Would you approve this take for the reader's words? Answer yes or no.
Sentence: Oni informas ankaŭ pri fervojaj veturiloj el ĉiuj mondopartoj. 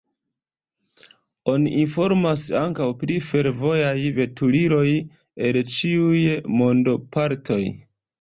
yes